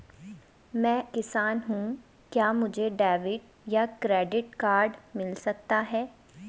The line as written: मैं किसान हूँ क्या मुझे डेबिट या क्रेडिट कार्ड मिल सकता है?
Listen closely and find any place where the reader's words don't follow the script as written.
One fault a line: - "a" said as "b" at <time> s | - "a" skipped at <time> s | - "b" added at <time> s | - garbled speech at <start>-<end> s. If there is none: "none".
none